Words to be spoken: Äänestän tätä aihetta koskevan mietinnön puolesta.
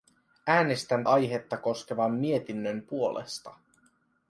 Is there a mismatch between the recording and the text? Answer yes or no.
yes